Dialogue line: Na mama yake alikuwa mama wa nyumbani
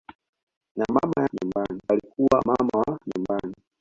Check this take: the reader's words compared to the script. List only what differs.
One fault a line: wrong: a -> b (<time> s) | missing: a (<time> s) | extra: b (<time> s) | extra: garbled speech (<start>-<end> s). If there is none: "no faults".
wrong: yake -> nyumbani (1.3 s)